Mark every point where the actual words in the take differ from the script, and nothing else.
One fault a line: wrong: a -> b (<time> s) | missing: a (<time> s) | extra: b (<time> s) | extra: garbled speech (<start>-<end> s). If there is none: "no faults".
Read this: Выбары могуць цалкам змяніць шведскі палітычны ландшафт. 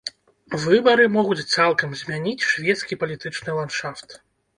no faults